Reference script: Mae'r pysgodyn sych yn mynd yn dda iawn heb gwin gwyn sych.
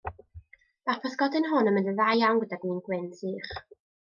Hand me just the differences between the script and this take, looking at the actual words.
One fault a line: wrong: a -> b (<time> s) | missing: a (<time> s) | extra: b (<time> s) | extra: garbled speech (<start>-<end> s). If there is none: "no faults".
wrong: sych -> hwn (1.5 s)
wrong: heb -> gyda (2.5 s)